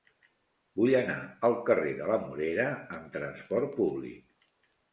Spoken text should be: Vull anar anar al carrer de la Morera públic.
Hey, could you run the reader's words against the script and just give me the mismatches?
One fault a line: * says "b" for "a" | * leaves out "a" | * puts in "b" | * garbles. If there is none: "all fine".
* leaves out "anar"
* puts in "amb trasport"